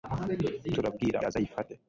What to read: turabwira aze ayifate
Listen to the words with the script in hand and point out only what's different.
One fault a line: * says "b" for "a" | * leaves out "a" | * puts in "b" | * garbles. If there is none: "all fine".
all fine